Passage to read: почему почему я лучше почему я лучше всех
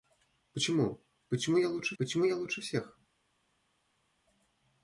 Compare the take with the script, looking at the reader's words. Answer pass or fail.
pass